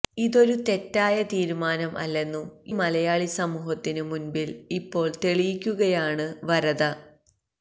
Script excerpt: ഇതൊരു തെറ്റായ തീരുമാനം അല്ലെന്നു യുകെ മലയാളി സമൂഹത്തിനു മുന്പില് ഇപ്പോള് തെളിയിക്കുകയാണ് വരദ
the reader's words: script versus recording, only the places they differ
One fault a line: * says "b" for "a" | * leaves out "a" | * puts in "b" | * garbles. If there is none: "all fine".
* leaves out "യുകെ"